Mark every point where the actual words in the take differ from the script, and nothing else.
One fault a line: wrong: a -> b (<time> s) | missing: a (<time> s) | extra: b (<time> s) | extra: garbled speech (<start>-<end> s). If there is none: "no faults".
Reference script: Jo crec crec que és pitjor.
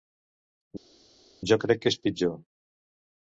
missing: crec (1.8 s)